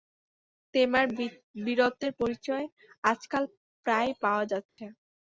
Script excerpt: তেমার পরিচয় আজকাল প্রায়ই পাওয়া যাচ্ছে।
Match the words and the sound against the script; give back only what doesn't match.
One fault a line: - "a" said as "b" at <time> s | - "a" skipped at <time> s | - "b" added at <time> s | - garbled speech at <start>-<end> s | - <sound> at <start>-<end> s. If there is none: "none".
- "বীরত্বের" added at 1.6 s
- dropout at 4.7-4.8 s